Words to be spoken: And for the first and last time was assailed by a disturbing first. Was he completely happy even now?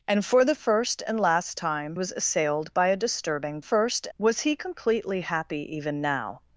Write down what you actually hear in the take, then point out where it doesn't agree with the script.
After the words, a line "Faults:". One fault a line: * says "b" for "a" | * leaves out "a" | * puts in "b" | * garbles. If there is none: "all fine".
And for the first and last time was assailed by a disturbing first. Was he completely happy even now?
Faults:
all fine